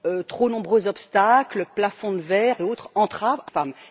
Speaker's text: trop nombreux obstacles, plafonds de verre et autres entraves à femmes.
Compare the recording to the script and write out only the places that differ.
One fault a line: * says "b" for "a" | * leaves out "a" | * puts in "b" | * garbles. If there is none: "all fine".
all fine